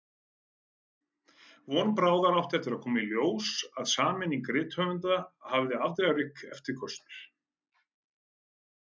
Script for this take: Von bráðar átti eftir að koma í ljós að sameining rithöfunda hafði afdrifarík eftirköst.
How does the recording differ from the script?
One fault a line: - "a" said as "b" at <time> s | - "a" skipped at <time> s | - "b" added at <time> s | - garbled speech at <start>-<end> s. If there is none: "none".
none